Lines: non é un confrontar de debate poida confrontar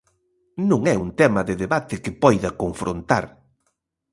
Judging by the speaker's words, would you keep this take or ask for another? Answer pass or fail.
fail